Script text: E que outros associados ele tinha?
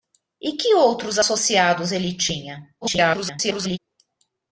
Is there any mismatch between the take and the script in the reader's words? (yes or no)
yes